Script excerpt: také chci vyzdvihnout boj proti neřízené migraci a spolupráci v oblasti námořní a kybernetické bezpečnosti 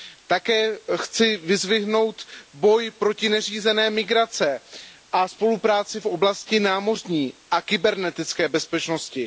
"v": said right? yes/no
yes